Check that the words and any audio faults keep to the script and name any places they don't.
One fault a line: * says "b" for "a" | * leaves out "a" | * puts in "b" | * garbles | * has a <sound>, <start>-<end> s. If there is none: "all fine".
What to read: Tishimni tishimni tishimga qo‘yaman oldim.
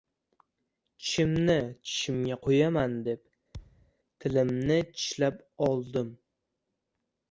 * leaves out "tishimni"
* puts in "deb tilimni tishlab"
* has a thud, 3.5-3.9 s